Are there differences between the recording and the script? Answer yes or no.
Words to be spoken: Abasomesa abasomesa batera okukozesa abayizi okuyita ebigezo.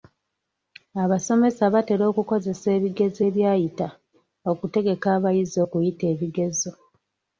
yes